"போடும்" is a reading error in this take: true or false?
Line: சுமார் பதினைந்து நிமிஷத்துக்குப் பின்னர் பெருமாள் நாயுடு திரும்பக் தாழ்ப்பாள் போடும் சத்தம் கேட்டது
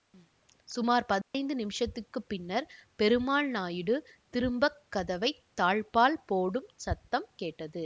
false